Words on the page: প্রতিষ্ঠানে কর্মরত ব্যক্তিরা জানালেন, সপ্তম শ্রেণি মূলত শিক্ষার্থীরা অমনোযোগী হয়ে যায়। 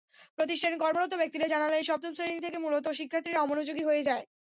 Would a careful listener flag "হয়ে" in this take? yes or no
no